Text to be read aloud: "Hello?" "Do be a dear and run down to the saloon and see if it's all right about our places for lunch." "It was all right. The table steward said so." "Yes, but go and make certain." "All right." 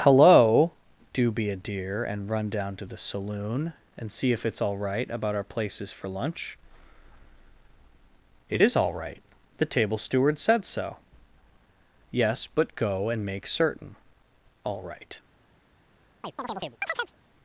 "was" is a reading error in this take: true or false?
true